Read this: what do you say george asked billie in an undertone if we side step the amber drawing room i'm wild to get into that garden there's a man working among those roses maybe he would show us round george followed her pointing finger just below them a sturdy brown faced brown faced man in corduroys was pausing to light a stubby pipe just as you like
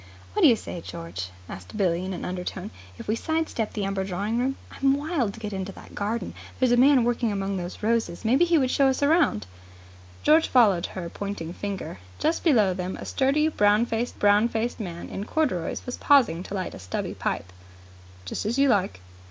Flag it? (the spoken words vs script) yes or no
no